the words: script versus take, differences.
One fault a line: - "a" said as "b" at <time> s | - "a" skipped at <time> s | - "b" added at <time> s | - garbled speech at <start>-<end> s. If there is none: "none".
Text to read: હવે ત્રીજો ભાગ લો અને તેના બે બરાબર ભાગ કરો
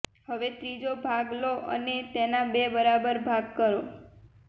none